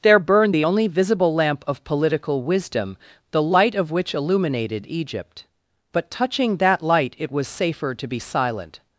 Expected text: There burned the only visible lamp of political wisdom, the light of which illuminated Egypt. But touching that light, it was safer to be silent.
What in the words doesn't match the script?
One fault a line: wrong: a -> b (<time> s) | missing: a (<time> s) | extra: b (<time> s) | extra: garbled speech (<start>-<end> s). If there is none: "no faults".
no faults